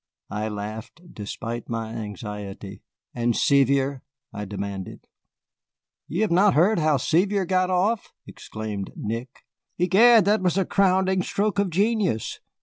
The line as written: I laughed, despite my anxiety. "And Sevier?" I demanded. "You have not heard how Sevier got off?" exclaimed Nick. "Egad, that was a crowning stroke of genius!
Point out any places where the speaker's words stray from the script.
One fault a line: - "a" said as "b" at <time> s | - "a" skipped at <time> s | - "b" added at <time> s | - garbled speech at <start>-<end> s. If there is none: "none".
none